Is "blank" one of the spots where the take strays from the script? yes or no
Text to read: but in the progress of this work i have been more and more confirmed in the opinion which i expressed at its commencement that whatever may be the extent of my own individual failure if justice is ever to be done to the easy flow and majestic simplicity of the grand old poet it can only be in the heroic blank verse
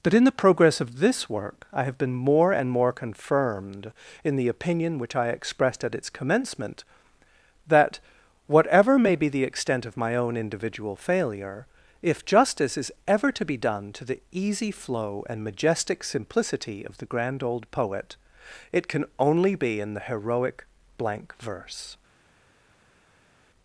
no